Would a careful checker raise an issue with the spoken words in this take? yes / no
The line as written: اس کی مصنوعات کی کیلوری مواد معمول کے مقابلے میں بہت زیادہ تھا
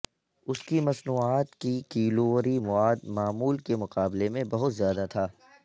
no